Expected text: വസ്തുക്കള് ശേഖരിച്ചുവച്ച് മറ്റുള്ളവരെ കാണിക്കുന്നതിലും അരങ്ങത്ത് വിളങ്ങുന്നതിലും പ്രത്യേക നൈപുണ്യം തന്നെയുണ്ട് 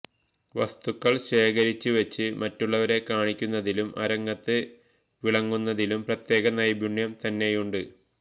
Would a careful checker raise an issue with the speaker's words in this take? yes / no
no